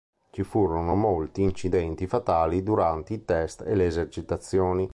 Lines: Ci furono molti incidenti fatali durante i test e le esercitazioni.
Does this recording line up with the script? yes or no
yes